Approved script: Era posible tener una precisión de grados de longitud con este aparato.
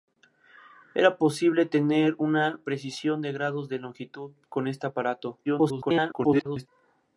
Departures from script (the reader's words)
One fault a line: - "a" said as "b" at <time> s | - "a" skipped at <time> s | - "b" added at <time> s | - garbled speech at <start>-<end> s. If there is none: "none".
- garbled speech at 5.4-6.7 s